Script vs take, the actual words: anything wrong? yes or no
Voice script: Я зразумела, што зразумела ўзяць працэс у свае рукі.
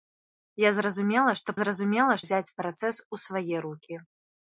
no